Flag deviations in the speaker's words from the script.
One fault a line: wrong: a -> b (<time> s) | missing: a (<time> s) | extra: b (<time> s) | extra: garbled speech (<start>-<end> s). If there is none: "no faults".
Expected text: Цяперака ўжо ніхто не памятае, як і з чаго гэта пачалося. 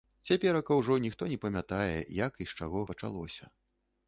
missing: гэта (2.9 s)